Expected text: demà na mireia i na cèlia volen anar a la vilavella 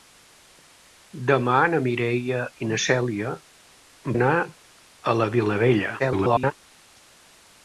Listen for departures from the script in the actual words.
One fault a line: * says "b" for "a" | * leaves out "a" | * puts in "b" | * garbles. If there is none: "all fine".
* leaves out "volen"
* garbles